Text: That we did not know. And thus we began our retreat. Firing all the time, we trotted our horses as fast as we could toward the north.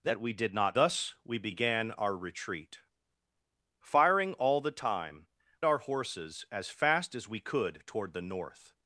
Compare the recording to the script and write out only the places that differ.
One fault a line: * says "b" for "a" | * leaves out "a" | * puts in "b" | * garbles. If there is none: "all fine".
* leaves out "know And"
* leaves out "we trotted"